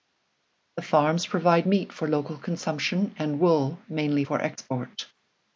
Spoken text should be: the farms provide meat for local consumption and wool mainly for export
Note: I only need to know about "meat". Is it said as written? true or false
true